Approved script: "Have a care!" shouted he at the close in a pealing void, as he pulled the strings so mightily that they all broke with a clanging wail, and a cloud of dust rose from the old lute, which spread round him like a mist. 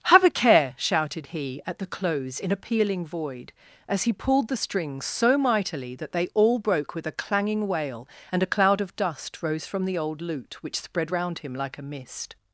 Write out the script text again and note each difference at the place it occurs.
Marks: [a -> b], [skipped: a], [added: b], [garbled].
"Have a care!" shouted he at the close in a pealing void, as he pulled the strings so mightily that they all broke with a clanging wail, and a cloud of dust rose from the old lute, which spread round him like a mist.